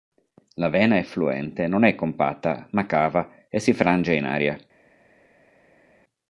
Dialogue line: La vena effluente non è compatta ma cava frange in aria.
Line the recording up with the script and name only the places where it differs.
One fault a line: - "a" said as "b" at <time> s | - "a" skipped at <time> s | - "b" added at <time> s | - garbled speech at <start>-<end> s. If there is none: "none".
- "e si" added at 3.5 s